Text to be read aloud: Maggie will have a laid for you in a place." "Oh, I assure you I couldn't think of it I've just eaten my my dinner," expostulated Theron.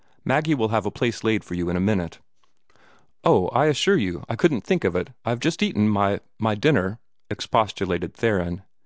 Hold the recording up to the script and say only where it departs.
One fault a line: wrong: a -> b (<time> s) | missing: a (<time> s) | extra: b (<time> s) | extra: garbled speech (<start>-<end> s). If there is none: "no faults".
extra: place (0.9 s)
wrong: place -> minute (1.8 s)